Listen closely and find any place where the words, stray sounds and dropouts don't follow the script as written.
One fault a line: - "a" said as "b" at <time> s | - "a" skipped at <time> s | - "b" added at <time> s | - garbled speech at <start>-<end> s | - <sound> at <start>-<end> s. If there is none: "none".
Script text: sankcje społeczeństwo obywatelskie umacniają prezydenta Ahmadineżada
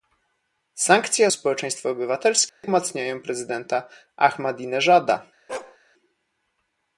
- dropout at 2.5-2.6 s
- bark at 5.5-5.8 s